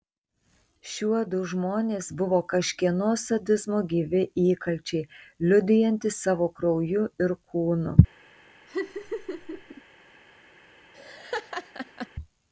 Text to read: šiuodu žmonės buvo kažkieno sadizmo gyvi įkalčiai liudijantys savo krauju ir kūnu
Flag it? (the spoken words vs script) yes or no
no